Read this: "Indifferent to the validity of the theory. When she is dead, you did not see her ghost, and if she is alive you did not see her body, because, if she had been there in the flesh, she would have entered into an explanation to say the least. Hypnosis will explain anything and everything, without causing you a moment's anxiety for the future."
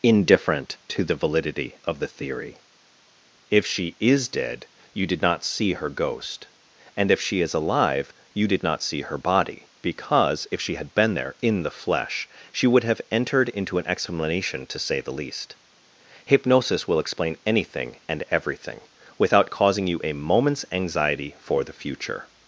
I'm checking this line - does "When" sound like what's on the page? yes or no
no